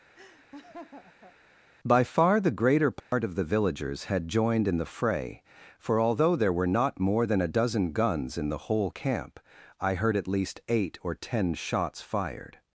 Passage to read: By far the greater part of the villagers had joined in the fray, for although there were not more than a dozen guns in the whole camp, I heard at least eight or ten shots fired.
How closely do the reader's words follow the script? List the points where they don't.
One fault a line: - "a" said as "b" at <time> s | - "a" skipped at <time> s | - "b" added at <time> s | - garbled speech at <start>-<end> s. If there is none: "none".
none